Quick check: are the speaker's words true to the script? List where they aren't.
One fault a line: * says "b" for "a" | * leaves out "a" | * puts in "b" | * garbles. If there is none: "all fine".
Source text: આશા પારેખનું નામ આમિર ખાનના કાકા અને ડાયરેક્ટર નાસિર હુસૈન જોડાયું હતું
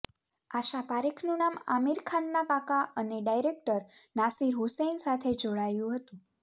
* puts in "સાથે"